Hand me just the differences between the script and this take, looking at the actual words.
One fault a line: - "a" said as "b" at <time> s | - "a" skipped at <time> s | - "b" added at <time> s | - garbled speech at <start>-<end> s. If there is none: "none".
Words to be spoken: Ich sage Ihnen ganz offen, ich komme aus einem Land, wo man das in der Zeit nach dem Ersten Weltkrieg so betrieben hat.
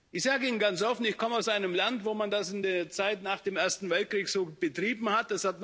none